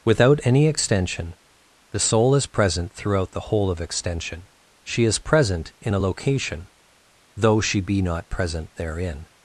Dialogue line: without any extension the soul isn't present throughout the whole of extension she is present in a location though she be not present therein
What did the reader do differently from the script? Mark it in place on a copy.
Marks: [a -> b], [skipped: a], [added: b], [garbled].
without any extension the soul [isn't -> is] present throughout the whole of extension she is present in a location though she be not present therein